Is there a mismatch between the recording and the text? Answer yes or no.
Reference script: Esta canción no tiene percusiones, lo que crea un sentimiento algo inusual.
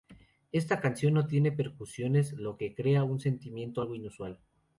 no